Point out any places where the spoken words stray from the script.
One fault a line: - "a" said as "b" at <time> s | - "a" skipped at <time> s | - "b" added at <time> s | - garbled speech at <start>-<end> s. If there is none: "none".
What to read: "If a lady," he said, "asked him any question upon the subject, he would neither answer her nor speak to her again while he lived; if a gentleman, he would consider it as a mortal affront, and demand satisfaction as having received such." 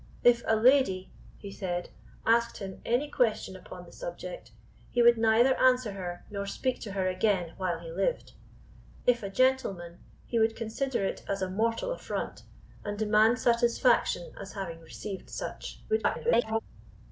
- garbled speech at 15.9-16.6 s